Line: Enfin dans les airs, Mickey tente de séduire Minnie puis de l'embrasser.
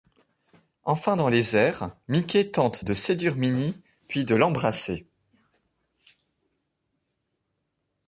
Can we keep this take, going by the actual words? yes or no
yes